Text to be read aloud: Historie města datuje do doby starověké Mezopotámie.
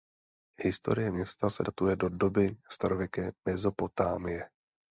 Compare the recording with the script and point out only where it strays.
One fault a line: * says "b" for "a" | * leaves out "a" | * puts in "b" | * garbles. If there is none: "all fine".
* puts in "se"